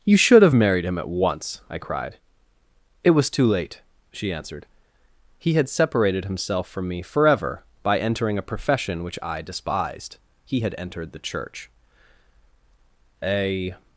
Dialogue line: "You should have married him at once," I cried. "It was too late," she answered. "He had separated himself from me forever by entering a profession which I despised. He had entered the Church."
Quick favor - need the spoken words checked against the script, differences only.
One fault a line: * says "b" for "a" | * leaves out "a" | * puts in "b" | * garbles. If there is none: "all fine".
* puts in "A"